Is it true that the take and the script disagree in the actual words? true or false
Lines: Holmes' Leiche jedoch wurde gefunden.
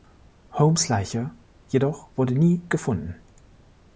true